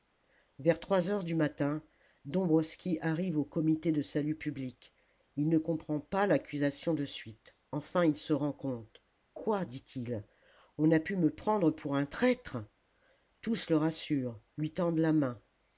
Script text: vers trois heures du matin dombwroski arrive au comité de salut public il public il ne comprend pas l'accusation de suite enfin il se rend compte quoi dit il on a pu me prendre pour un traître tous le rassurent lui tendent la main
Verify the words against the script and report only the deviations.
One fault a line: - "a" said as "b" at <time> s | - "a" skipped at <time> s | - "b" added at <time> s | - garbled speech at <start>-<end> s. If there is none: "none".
- "public il" skipped at 5.5 s